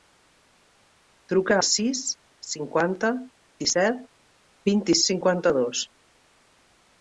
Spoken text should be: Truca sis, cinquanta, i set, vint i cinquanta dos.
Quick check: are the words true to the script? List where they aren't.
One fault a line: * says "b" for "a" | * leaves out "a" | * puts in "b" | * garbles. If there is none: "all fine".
all fine